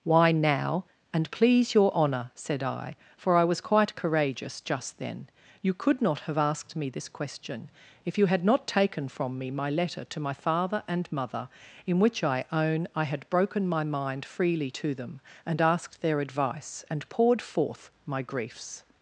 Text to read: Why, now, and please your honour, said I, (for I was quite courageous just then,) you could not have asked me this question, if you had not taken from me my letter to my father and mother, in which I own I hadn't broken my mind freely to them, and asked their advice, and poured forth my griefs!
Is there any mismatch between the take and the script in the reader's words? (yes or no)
yes